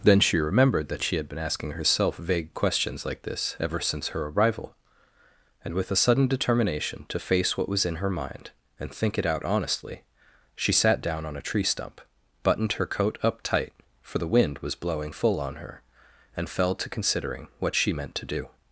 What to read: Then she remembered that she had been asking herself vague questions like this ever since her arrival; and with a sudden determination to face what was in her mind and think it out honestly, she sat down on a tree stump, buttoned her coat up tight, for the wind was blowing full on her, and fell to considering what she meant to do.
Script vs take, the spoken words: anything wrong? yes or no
no